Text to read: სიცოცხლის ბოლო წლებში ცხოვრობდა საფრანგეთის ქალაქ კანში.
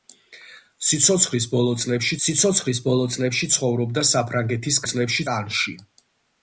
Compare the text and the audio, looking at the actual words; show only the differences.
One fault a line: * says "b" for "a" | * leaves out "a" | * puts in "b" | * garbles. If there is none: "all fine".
* puts in "სიცოცხლის ბოლო წლებში"
* says "წლებში" for "ქალაქ"